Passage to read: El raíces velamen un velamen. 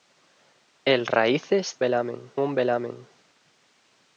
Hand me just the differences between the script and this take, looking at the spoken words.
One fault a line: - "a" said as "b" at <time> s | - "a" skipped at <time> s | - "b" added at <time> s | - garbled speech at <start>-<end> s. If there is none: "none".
none